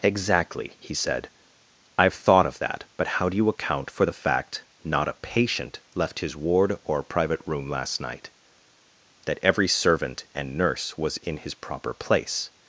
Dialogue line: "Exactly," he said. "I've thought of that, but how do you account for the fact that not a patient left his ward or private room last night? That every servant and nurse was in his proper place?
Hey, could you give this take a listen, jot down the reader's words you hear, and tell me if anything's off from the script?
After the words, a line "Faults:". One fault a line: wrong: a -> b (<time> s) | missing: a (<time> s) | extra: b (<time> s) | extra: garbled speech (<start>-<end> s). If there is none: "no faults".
"Exactly," he said. "I've thought of that, but how do you account for the fact not a patient left his ward or private room last night? That every servant and nurse was in his proper place?
Faults:
missing: that (4.6 s)